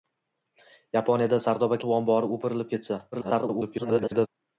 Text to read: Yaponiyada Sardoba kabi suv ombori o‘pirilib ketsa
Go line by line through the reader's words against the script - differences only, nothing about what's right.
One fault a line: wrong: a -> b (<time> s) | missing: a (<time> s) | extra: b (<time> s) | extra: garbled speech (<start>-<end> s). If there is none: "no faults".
missing: kabi (1.8 s)
extra: garbled speech (3.1-4.3 s)